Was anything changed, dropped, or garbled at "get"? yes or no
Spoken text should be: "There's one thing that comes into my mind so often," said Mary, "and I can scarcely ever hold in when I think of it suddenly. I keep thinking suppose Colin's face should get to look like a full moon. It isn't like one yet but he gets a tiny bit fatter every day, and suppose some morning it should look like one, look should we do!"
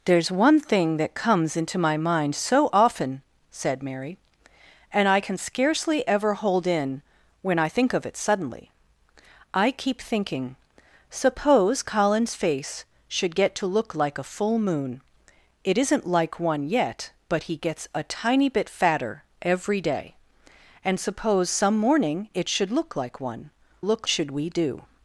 no